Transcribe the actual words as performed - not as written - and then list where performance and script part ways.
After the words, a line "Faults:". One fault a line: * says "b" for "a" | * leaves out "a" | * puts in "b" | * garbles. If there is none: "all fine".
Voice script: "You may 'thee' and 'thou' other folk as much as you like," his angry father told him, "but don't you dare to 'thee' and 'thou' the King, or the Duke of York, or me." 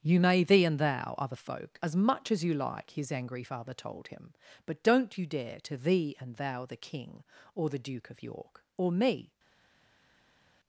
"You may 'thee' and 'thou' other folk as much as you like," his angry father told him, "but don't you dare to 'thee' and 'thou' the King, or the Duke of York, or me."
Faults:
all fine